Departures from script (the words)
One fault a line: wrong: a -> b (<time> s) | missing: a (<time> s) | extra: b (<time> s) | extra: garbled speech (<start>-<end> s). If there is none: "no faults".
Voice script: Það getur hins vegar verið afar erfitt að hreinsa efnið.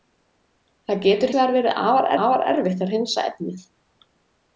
missing: hins (1.4 s)
extra: afar (2.2 s)